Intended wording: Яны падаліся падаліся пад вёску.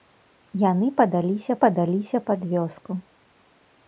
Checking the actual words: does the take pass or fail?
pass